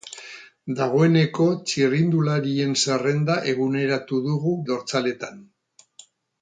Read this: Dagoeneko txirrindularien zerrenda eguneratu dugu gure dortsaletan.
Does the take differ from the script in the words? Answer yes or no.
yes